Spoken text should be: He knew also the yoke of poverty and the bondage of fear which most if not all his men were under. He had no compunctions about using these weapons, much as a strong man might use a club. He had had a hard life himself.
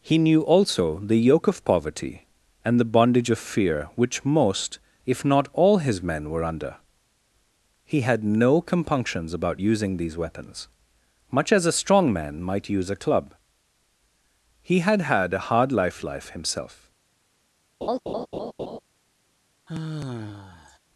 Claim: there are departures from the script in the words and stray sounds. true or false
true